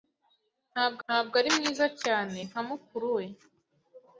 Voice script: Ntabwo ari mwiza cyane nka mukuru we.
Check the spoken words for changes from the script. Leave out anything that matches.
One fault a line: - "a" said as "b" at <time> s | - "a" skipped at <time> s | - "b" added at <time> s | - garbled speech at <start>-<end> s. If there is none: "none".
- "ntabwo" added at 1.0 s